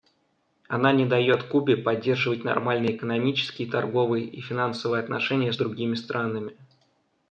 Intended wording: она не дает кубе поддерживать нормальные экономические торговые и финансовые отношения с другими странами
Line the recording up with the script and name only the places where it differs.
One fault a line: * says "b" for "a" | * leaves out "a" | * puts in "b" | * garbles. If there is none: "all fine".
all fine